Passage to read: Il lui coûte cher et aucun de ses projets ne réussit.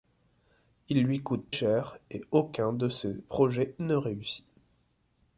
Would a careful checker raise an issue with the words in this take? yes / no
no